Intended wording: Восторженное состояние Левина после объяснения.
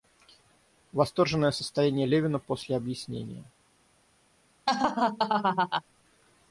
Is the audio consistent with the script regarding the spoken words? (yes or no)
yes